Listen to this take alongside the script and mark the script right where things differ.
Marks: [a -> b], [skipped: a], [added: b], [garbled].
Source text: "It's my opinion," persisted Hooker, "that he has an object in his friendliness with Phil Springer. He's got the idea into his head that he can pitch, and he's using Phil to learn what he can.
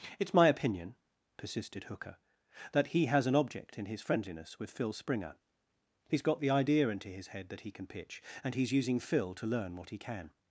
"It's my opinion," persisted Hooker, "that he has an object in his friendliness with Phil Springer. He's got the idea into his head that he can pitch, and he's using Phil to learn what he can.